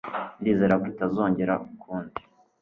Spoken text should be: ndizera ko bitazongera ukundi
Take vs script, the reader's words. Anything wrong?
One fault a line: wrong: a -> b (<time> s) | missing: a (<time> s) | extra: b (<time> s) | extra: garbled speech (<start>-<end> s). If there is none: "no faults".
no faults